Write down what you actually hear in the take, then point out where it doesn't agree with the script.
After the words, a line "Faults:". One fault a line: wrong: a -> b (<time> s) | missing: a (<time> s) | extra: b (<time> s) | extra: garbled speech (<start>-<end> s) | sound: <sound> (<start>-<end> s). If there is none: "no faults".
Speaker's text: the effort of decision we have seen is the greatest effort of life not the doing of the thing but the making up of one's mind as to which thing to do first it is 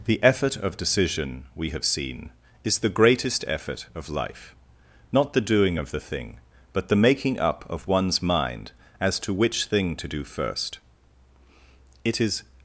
the effort of decision we have seen is the greatest effort of life not the doing of the thing but the making up of one's mind as to which thing to do first it is
Faults:
no faults